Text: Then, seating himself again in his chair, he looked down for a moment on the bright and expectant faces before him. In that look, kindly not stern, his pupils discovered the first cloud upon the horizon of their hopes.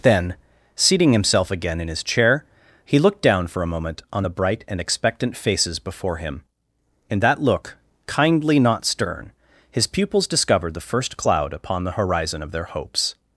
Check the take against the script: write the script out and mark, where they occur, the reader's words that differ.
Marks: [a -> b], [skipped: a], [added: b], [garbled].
Then, seating himself again in his chair, he looked down for a moment on the bright and expectant faces before him. In that look, kindly not stern, his pupils discovered the first cloud upon the horizon of their hopes.